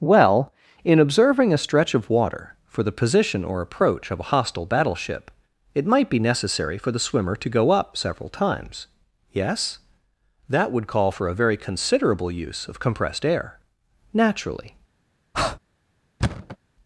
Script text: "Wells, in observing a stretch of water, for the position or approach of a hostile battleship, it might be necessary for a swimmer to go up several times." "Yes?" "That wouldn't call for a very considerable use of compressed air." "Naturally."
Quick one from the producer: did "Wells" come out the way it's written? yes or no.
no